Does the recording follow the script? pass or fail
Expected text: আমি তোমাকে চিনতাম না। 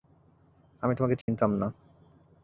pass